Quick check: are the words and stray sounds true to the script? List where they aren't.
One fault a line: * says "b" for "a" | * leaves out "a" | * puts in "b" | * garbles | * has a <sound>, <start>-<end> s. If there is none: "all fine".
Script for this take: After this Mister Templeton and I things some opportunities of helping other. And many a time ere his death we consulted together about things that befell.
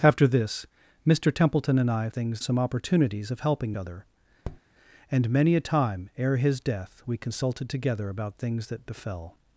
* has a tap, 4.4-4.6 s